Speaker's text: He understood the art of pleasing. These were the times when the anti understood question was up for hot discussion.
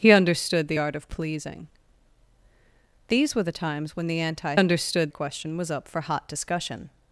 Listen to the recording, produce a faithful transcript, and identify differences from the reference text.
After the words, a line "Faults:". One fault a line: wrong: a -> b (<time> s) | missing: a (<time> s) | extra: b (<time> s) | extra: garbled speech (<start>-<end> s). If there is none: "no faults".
He understood the art of pleasing. These were the times when the anti understood question was up for hot discussion.
Faults:
no faults